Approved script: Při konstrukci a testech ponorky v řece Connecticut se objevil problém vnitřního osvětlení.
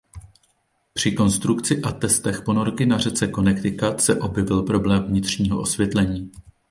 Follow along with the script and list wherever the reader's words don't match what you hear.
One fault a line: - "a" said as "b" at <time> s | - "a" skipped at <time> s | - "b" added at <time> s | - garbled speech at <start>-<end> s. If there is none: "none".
- "v" said as "na" at 2.9 s